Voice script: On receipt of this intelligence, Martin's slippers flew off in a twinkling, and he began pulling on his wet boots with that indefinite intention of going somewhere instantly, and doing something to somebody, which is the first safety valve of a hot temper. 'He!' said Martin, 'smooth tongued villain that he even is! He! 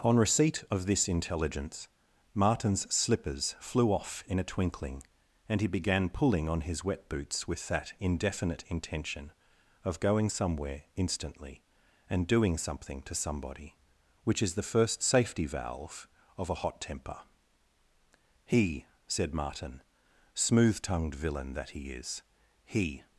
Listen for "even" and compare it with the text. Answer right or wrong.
wrong